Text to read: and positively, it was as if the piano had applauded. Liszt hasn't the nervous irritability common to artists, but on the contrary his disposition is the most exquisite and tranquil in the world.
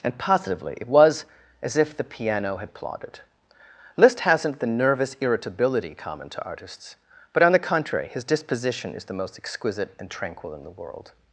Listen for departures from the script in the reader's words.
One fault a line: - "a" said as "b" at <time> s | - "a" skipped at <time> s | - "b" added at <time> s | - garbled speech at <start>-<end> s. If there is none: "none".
none